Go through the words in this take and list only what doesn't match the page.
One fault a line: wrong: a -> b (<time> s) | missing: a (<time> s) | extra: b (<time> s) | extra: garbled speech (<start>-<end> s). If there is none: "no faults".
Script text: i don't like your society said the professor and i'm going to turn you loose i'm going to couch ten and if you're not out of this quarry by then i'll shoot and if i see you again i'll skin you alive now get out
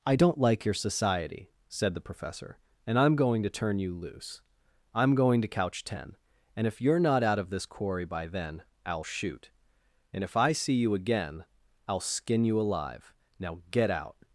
no faults